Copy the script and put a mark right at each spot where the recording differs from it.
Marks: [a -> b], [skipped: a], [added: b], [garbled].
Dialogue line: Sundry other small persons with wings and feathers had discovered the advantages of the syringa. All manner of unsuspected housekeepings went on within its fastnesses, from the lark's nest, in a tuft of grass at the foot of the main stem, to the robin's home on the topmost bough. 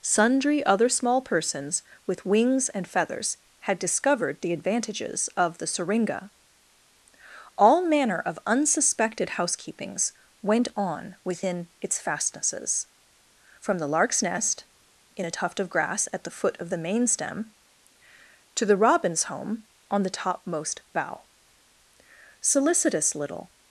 Sundry other small persons with wings and feathers had discovered the advantages of the syringa. All manner of unsuspected housekeepings went on within its fastnesses, from the lark's nest, in a tuft of grass at the foot of the main stem, to the robin's home on the topmost bough. [added: Solicitous little]